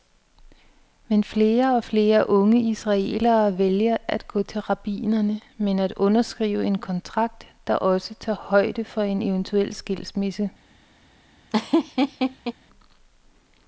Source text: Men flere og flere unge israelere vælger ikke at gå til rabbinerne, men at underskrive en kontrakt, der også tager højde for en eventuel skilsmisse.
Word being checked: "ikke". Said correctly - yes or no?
no